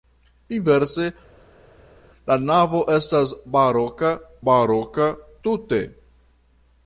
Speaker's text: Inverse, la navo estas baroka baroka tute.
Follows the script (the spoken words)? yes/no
yes